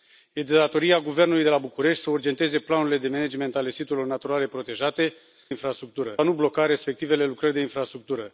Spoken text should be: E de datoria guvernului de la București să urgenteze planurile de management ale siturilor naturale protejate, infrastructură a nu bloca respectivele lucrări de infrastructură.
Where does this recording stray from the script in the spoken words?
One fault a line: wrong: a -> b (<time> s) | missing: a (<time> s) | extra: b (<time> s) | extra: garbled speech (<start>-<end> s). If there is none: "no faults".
no faults